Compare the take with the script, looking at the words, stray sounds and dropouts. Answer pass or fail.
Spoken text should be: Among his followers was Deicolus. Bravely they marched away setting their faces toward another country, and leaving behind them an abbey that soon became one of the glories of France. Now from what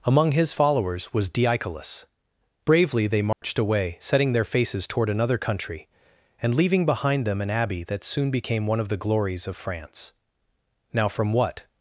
fail